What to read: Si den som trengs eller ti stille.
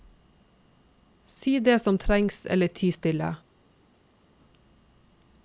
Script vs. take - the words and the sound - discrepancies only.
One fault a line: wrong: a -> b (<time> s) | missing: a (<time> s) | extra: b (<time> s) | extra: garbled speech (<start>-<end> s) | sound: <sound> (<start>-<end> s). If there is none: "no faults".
wrong: den -> det (1.6 s)